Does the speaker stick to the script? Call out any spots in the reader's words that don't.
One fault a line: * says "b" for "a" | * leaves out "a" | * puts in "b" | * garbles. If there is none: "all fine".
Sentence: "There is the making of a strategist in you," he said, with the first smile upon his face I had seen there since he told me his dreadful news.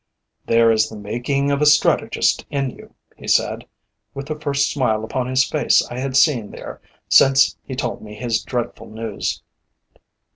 all fine